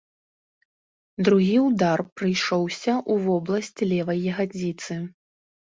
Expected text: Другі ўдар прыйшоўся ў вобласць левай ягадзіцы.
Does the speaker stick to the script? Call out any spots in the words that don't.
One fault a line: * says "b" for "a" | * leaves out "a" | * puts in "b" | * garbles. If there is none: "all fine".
all fine